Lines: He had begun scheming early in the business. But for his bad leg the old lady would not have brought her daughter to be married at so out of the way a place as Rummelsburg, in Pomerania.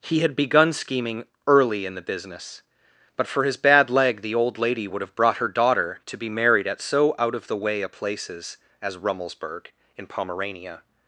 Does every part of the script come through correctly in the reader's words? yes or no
no